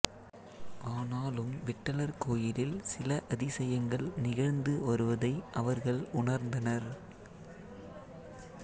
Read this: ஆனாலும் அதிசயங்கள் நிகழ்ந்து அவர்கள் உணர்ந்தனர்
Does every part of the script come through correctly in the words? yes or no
no